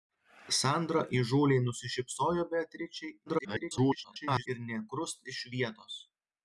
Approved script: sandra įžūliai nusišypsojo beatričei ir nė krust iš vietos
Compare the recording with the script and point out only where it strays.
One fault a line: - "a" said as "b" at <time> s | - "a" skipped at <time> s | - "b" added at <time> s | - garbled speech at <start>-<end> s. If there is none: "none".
- garbled speech at 3.3-4.5 s